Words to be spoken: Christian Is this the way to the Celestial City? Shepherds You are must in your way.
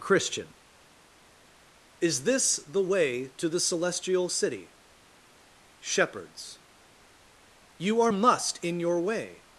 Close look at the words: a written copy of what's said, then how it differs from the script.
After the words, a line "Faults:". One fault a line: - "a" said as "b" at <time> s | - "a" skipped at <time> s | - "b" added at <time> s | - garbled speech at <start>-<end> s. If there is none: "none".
Christian Is this the way to the Celestial City? Shepherds You are must in your way.
Faults:
none